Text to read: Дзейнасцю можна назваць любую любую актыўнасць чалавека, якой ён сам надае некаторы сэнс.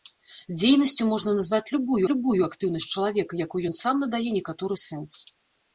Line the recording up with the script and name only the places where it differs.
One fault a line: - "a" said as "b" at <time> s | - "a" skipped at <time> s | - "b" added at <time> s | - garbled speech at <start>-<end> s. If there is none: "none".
none